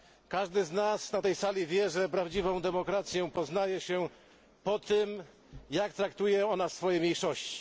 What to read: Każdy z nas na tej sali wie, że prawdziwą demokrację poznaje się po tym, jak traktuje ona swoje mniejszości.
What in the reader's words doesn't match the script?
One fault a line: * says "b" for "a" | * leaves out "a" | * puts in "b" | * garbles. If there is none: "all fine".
all fine